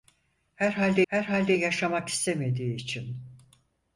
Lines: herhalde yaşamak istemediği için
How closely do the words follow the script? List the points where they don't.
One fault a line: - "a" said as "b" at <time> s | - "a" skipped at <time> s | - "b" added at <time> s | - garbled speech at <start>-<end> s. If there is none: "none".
- "herhalde" added at 1.1 s